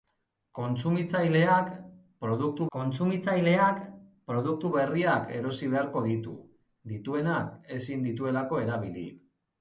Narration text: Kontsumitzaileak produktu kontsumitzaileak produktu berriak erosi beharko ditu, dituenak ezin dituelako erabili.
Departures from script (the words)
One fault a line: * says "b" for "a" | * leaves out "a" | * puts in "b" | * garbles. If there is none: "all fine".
all fine